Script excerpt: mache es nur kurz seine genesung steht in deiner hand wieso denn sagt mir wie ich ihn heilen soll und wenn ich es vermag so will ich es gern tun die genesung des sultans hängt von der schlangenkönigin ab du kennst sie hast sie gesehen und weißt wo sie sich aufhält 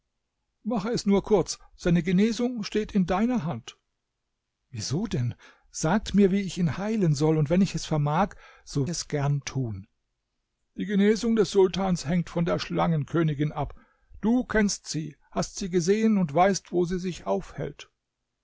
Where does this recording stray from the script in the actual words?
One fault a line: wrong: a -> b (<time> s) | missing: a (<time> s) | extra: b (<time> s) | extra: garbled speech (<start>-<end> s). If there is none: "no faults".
missing: will ich (8.9 s)